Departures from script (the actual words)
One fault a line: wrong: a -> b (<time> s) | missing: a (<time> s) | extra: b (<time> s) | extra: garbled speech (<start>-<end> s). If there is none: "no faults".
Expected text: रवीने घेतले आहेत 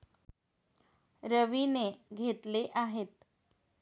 no faults